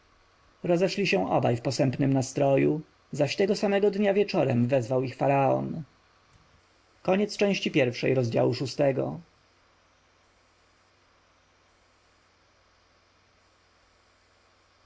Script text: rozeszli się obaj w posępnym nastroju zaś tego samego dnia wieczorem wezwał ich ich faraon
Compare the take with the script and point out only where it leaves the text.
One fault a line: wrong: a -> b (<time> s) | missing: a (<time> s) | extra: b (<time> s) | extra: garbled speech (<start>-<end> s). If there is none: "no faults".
missing: ich (5.2 s)